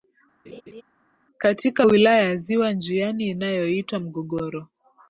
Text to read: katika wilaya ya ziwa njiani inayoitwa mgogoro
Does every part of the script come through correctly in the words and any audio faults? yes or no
no